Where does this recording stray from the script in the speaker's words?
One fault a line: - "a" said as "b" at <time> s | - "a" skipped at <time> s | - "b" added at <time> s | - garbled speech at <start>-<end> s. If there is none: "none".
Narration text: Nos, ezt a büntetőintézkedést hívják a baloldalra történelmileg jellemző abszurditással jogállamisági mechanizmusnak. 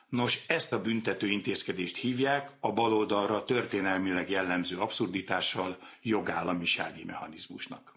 none